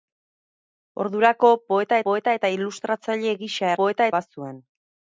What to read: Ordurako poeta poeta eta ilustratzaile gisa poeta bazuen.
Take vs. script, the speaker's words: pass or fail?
pass